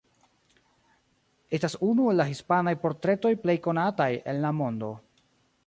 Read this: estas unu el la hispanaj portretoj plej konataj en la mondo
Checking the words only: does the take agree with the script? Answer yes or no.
yes